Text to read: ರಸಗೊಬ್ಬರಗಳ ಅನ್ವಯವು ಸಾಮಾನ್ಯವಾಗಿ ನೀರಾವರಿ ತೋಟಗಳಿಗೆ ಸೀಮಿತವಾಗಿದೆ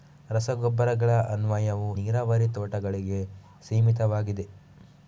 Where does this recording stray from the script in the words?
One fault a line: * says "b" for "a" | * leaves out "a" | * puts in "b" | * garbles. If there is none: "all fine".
* leaves out "ಸಾಮಾನ್ಯವಾಗಿ"